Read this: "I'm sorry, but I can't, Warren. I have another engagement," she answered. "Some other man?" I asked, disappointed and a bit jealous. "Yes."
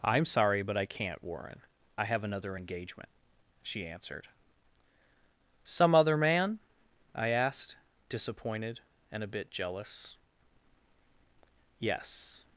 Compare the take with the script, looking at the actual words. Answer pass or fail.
pass